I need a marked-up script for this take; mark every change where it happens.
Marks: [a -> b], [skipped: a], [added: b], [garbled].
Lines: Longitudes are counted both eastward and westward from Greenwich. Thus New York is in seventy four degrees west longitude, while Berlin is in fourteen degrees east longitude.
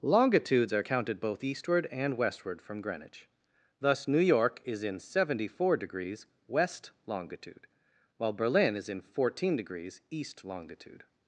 Longitudes are counted both eastward and westward from Greenwich. Thus New York is in seventy four degrees west longitude, while Berlin is in fourteen degrees east longitude.